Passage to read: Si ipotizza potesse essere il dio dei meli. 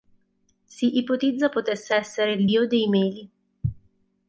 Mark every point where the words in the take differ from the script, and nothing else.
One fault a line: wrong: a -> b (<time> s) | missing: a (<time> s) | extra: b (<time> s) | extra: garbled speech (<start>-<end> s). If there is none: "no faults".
no faults